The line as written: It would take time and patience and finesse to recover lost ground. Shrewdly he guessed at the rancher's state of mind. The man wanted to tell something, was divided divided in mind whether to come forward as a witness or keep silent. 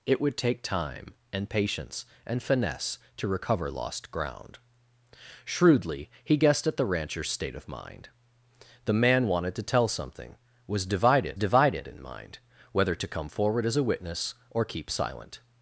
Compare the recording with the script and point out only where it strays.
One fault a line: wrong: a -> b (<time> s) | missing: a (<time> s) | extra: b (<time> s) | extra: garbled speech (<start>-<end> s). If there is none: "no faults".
no faults